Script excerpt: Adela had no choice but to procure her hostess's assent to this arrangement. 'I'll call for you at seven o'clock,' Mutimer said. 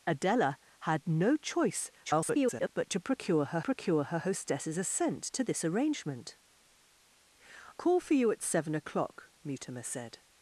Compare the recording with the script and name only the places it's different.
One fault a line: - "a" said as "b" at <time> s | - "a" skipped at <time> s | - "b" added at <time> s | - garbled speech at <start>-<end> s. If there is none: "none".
- garbled speech at 2.0-2.7 s
- "procure her" added at 3.6 s
- "I'll" skipped at 6.4 s